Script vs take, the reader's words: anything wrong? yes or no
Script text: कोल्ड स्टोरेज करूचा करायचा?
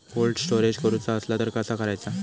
yes